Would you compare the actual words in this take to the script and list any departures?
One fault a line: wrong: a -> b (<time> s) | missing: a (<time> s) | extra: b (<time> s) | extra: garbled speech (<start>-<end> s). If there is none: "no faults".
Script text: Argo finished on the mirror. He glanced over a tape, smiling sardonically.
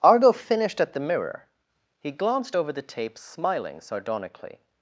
wrong: on -> at (0.8 s)
wrong: a -> the (2.7 s)